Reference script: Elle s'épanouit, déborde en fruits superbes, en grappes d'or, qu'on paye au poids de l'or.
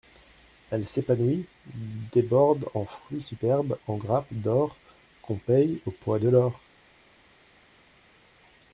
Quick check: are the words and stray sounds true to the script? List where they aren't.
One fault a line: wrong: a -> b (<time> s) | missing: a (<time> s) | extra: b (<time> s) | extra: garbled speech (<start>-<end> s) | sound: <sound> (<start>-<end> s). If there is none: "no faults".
no faults